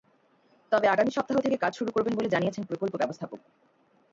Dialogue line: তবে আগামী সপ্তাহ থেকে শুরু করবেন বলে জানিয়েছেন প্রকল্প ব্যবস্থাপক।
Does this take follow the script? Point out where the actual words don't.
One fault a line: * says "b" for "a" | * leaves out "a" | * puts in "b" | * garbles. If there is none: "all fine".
* puts in "কাজ"